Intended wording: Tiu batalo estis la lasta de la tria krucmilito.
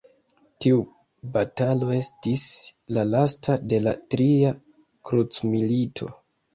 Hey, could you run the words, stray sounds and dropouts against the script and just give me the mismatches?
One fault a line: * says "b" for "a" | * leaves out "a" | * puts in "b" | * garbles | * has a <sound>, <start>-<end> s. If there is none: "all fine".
all fine